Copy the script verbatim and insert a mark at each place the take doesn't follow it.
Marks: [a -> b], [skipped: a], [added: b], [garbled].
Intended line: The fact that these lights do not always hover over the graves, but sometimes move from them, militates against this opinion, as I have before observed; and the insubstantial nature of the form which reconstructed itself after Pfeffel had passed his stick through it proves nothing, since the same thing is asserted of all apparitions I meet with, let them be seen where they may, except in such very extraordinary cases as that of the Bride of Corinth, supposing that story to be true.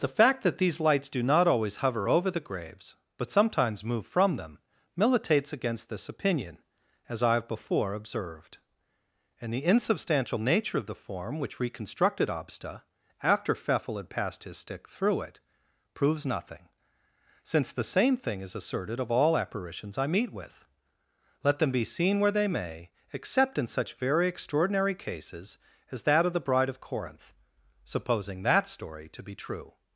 The fact that these lights do not always hover over the graves, but sometimes move from them, militates against this opinion, as I have before observed; and the insubstantial nature of the form which reconstructed [itself -> obsta] after Pfeffel had passed his stick through it proves nothing, since the same thing is asserted of all apparitions I meet with, let them be seen where they may, except in such very extraordinary cases as that of the Bride of Corinth, supposing that story to be true.